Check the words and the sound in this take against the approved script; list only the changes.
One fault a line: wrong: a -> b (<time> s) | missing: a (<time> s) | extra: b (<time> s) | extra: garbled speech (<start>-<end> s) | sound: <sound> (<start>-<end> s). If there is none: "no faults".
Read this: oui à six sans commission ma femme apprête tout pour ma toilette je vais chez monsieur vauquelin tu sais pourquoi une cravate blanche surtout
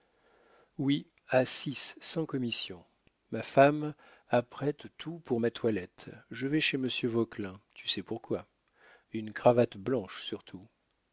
no faults